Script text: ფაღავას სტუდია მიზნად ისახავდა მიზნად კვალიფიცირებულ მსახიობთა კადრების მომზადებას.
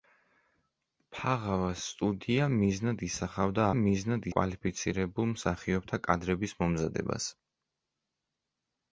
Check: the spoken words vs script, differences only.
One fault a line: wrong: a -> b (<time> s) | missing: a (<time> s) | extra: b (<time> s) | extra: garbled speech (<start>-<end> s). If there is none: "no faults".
no faults